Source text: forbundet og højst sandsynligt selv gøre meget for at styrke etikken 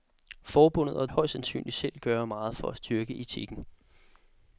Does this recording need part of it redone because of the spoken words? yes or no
no